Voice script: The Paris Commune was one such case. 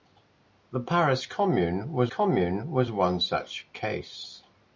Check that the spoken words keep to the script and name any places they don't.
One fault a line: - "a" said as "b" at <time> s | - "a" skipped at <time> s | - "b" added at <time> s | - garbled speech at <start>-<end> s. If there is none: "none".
- "Commune was" added at 2.1 s